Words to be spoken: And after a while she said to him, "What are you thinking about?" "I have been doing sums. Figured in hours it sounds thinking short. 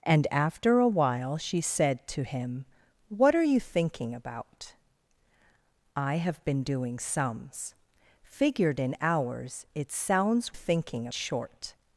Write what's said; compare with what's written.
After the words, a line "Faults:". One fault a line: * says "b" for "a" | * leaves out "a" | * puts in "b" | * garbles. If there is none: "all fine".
And after a while she said to him, "What are you thinking about?" "I have been doing sums. Figured in hours it sounds thinking short.
Faults:
all fine